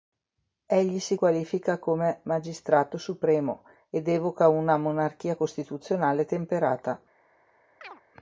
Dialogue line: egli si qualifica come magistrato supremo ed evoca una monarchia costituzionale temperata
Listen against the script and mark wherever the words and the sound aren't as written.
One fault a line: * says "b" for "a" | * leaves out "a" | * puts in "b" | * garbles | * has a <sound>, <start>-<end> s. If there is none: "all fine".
* has a chirp, 7.8-8.0 s